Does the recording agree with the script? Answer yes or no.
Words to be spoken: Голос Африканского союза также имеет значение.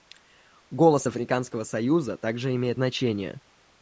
yes